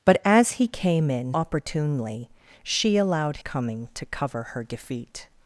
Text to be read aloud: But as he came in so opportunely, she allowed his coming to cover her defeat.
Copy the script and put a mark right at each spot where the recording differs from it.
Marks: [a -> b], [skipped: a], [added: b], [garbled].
But as he came in [skipped: so] opportunely, she allowed [skipped: his] coming to cover her defeat.